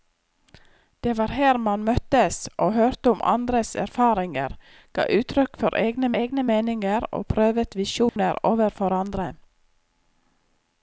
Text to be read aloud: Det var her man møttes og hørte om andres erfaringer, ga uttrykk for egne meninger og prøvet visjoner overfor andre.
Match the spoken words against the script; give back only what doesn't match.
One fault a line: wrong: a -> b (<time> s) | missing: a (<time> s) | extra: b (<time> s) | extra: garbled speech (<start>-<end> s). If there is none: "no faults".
extra: egne (6.2 s)